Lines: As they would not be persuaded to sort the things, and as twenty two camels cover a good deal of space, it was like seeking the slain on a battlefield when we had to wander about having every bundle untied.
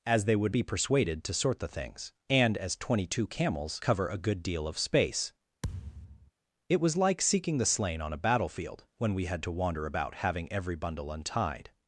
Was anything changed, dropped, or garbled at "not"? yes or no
yes